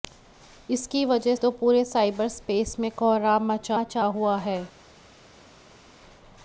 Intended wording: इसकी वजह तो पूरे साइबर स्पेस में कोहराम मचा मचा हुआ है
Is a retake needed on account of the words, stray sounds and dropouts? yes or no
no